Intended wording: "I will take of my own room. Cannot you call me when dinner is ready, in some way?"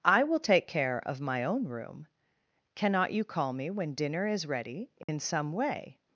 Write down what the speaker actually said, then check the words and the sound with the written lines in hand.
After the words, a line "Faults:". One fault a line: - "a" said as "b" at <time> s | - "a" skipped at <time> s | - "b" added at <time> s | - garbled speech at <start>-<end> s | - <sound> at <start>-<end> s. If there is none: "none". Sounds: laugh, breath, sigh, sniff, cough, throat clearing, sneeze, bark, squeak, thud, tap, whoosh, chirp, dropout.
"I will take care of my own room. Cannot you call me when dinner is ready, in some way?"
Faults:
- "care" added at 0.7 s
- dropout at 5.0-5.1 s